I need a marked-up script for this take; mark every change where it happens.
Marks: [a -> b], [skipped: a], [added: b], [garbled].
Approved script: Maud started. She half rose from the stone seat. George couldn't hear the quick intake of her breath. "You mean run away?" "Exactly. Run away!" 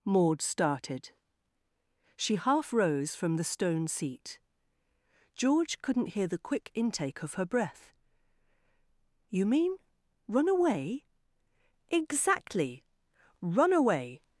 Maud started. She half rose from the stone seat. George couldn't hear the quick intake of her breath. "You mean run away?" "Exactly. Run away!"